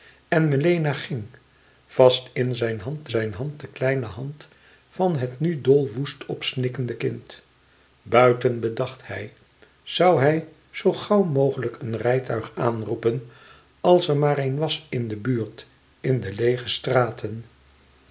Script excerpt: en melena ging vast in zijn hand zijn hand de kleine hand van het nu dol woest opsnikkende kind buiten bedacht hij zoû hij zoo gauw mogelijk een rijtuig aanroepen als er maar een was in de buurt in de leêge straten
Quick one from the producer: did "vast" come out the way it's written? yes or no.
yes